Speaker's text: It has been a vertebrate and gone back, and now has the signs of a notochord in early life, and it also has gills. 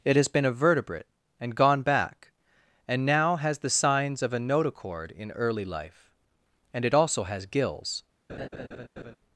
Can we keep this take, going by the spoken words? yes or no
yes